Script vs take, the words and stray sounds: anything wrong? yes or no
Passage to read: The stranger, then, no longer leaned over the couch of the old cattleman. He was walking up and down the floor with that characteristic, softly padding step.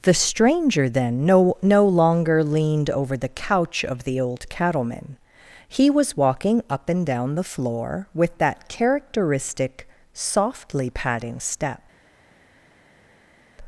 yes